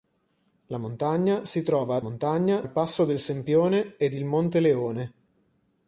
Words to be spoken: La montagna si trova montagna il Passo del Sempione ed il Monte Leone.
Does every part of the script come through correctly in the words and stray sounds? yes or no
yes